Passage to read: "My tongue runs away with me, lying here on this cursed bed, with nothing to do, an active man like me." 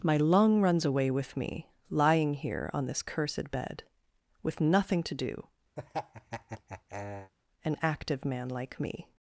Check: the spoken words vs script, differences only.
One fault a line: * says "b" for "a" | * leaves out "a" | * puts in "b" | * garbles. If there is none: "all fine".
* says "lung" for "tongue"